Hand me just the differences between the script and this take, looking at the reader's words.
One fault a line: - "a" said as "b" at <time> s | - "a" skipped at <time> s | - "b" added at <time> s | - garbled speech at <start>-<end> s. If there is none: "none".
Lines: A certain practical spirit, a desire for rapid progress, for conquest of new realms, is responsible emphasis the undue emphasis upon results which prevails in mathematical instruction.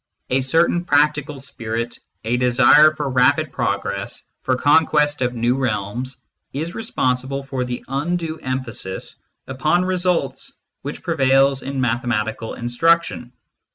- "emphasis" said as "for" at 7.4 s